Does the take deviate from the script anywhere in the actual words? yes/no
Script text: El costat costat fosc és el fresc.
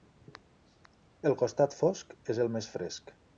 yes